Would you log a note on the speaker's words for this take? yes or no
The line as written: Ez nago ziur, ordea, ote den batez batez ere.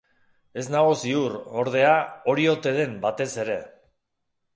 yes